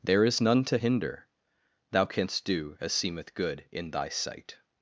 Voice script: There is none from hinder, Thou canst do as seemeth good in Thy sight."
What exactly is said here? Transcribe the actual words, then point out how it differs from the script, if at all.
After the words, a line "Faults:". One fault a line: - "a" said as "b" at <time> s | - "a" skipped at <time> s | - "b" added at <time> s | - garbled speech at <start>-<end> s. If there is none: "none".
There is none to hinder, Thou canst do as seemeth good in Thy sight."
Faults:
- "from" said as "to" at 0.7 s